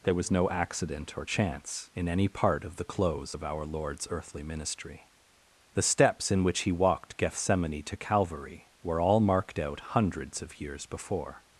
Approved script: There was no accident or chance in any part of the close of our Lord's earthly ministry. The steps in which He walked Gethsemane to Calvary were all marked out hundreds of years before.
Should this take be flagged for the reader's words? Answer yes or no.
no